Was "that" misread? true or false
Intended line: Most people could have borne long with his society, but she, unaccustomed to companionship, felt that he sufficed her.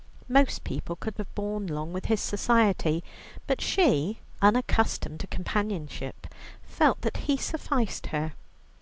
false